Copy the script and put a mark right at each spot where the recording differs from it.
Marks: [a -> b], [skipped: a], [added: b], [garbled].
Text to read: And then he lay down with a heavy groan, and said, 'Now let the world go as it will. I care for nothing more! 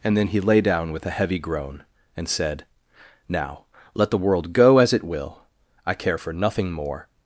And then he lay down with a heavy groan, and said, 'Now let the world go as it will. I care for nothing more!